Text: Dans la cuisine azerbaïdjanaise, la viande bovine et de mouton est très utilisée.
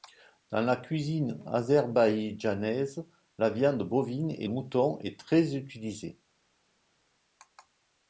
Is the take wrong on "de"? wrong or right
wrong